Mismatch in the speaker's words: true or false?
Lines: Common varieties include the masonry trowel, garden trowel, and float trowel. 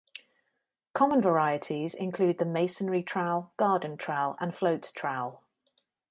false